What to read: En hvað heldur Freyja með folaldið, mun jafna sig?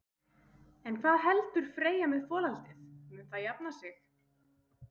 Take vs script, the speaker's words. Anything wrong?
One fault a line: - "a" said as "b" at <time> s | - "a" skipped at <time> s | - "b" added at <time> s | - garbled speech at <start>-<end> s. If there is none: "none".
- "það" added at 3.3 s